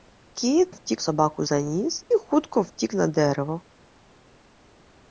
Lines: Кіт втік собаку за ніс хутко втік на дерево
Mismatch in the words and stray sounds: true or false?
false